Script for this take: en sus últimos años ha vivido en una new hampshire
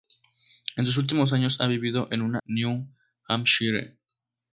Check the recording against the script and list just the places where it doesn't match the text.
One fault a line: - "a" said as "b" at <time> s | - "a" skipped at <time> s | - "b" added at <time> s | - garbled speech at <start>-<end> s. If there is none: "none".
none